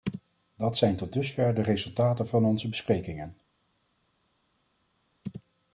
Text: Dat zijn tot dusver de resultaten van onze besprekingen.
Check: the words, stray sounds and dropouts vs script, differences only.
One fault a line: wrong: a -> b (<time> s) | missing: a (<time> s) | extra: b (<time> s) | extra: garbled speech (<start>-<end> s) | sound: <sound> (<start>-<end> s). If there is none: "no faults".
no faults